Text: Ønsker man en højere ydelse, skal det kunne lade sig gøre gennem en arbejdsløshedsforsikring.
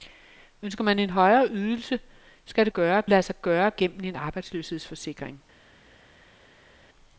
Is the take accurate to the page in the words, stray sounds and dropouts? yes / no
no